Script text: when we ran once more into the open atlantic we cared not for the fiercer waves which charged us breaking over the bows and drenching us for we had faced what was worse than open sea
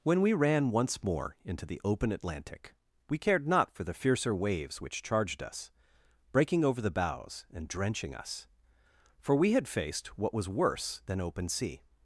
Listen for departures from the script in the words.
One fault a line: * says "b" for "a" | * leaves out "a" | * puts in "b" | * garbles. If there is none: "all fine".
all fine